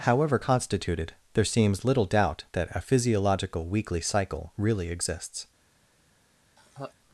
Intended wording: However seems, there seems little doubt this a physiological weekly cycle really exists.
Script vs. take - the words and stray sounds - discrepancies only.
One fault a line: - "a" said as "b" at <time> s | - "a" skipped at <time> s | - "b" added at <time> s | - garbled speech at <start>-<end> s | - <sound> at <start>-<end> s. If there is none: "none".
- "seems" said as "constituted" at 0.4 s
- "this" said as "that" at 2.5 s
- laugh at 6.6-6.9 s